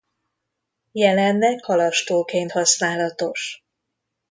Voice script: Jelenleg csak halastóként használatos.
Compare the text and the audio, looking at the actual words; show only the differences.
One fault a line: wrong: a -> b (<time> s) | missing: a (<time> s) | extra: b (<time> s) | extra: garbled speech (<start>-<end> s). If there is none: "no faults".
missing: csak (1.6 s)